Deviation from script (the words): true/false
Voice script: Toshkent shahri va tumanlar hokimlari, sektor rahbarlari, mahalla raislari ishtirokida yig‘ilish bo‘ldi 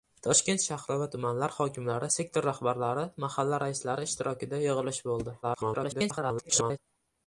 true